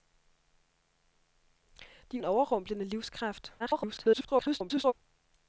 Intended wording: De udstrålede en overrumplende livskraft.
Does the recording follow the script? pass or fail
fail